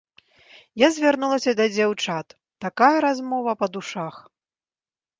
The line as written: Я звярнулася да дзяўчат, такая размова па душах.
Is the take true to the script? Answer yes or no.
yes